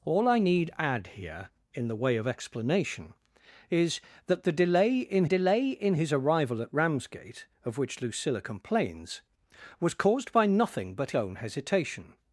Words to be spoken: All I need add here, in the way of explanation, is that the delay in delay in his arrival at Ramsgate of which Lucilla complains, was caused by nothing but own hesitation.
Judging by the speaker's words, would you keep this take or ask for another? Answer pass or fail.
pass